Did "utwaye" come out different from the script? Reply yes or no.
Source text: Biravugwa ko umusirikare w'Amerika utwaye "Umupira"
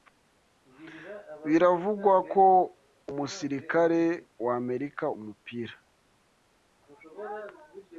yes